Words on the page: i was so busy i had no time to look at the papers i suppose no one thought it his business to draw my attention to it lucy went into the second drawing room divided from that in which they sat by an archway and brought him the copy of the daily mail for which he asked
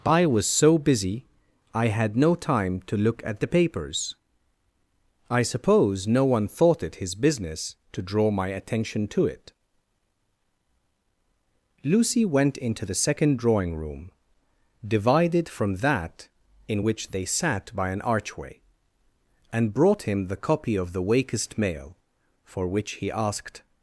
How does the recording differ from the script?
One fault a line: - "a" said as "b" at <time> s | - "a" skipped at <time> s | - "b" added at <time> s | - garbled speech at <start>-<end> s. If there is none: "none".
- "daily" said as "wakest" at 21.0 s